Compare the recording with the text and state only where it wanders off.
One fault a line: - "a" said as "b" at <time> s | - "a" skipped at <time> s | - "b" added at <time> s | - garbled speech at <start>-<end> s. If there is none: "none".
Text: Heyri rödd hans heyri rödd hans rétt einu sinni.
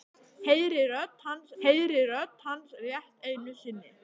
none